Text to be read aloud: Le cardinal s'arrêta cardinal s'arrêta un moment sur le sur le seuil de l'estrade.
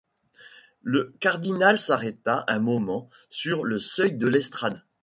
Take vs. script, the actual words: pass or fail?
fail